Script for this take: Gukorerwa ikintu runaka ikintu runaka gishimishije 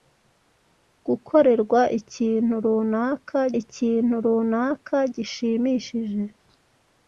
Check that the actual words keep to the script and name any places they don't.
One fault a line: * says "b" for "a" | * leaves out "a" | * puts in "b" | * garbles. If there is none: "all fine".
all fine